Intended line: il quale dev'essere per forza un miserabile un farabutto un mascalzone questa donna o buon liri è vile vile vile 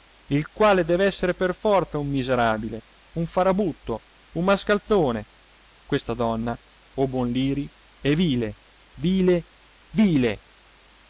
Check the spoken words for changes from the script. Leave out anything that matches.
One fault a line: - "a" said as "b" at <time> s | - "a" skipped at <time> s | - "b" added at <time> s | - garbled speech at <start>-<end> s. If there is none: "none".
none